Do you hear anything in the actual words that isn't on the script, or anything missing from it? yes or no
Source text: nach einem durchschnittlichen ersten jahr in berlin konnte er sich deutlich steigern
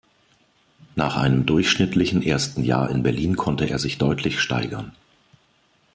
no